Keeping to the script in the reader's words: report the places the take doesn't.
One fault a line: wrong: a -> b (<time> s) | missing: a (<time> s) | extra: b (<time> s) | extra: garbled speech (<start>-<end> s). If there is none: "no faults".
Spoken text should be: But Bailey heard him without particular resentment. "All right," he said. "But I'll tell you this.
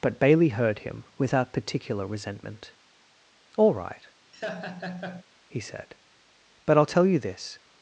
no faults